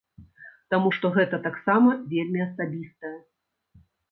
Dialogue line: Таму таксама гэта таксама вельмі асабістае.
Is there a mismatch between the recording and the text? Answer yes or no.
yes